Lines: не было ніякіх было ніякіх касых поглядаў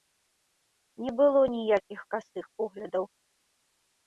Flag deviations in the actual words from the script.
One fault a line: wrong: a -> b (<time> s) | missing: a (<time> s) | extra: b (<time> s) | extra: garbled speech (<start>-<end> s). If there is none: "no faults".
missing: было ніякіх (2.0 s)